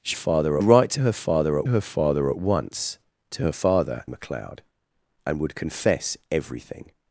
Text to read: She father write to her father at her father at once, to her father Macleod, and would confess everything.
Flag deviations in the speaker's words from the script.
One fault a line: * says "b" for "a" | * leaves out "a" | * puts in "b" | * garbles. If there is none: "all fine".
all fine